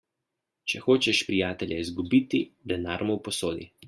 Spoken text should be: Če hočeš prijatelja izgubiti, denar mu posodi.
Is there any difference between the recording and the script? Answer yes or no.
no